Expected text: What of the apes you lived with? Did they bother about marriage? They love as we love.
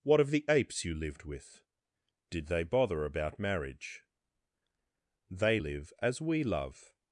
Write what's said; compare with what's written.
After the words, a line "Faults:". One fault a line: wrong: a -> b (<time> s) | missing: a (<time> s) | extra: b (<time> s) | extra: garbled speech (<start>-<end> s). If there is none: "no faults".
What of the apes you lived with? Did they bother about marriage? They live as we love.
Faults:
wrong: love -> live (5.6 s)